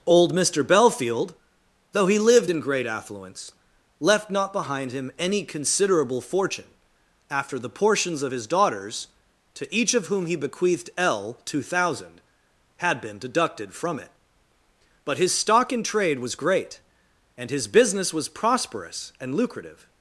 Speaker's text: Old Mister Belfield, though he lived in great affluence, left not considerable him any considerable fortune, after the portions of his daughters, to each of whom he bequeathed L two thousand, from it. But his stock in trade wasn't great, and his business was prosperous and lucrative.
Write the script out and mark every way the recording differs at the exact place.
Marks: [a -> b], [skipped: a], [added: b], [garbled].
Old Mister Belfield, though he lived in great affluence, left not [considerable -> behind] him any considerable fortune, after the portions of his daughters, to each of whom he bequeathed L two thousand, [added: had been deducted] from it. But his stock in trade [wasn't -> was] great, and his business was prosperous and lucrative.